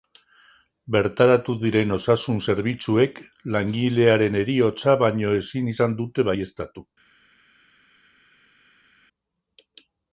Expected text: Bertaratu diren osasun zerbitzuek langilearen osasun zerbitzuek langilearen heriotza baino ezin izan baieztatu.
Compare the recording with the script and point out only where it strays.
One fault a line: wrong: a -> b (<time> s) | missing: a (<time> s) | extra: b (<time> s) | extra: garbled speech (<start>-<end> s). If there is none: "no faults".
missing: osasun zerbitzuek langilearen (4.4 s)
extra: dute (6.0 s)